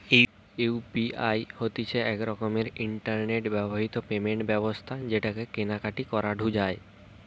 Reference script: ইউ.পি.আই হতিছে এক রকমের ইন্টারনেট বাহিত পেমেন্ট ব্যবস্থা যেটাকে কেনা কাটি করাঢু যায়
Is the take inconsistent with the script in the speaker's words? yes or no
no